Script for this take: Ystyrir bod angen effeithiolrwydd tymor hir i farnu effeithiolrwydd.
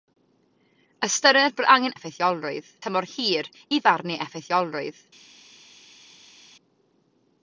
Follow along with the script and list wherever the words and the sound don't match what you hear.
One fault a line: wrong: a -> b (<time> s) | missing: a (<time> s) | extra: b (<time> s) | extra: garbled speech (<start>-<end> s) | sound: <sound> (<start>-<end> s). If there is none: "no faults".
no faults